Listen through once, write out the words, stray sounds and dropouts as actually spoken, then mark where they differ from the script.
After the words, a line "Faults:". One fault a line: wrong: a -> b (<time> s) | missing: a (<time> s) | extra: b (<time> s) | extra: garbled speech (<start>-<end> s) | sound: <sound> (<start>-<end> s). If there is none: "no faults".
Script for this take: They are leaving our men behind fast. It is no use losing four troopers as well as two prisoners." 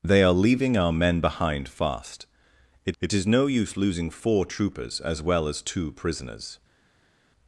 They are leaving our men behind fast. It it is no use losing four troopers as well as two prisoners."
Faults:
extra: it (3.0 s)